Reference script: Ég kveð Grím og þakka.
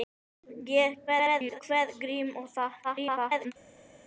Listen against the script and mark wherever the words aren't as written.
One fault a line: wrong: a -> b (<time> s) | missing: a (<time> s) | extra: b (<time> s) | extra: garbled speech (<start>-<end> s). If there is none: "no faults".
extra: garbled speech (1.1-1.6 s)
extra: garbled speech (2.8-3.5 s)